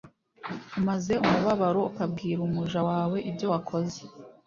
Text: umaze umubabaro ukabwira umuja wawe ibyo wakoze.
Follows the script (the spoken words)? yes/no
yes